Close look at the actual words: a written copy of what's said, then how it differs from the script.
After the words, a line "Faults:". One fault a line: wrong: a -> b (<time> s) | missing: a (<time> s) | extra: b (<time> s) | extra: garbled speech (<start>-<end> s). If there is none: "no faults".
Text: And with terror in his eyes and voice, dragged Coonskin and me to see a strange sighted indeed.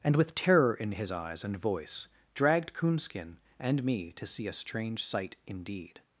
And with terror in his eyes and voice, dragged Coonskin and me to see a strange sight indeed.
Faults:
wrong: sighted -> sight (5.0 s)